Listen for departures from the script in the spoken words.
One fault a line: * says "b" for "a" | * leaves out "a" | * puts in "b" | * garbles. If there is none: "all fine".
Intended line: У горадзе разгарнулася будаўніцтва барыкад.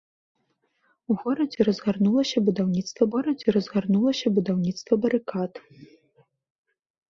* puts in "горадзе разгарнулася будаўніцтва"